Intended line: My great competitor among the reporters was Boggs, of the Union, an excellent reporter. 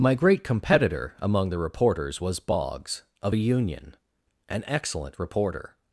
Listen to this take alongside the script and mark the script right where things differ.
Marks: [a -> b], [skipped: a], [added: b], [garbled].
My great competitor among the reporters was Boggs, of [the -> a] Union, an excellent reporter.